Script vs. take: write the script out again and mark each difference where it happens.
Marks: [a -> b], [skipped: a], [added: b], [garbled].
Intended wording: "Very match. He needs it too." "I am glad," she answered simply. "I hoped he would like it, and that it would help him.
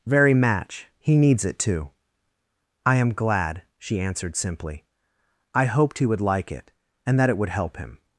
"Very match. He needs it too." "I am glad," she answered simply. "I hoped he would like it, and that it would help him.